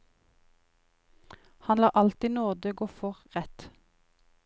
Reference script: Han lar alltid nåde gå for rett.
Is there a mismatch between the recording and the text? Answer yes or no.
no